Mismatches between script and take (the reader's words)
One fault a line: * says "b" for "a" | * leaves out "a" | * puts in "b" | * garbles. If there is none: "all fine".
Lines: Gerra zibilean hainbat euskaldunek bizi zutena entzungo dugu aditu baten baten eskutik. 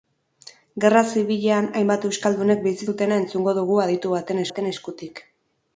all fine